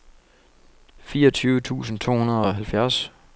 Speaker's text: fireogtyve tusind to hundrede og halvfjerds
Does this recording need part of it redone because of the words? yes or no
no